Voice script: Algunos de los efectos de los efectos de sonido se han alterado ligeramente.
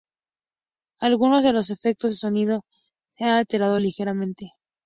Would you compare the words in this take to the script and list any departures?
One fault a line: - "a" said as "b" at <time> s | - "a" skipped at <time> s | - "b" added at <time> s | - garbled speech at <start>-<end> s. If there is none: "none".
- "los efectos de" skipped at 2.2 s